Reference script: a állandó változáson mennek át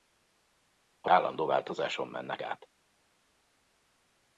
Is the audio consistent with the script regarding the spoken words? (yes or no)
yes